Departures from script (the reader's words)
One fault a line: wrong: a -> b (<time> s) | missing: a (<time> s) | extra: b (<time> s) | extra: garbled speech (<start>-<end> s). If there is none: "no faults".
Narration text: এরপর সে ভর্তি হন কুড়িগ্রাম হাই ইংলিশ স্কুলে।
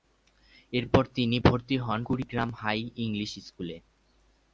wrong: সে -> তিনি (1.1 s)